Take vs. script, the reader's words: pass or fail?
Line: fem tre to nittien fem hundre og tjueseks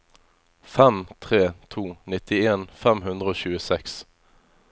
pass